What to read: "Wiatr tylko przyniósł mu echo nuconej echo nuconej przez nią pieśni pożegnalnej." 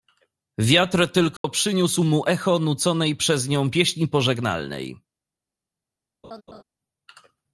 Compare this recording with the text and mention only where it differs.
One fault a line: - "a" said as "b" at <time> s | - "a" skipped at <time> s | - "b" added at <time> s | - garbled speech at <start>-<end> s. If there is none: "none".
- "echo nuconej" skipped at 3.1 s